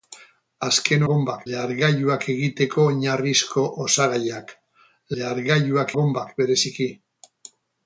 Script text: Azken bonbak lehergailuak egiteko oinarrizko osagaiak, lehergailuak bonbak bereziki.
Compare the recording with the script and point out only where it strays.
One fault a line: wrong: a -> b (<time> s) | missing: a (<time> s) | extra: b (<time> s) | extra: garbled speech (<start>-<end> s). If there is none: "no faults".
no faults